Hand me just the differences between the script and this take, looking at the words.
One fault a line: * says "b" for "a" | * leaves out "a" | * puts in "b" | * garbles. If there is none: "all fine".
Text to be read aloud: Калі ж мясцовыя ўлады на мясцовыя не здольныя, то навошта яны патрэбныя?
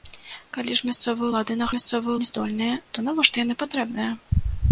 all fine